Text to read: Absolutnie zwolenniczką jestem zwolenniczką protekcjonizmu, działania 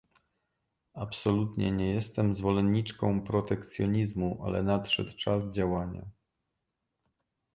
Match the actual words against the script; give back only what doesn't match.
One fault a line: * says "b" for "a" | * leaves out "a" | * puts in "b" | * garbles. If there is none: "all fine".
* says "nie" for "zwolenniczką"
* puts in "ale nadszedł czas"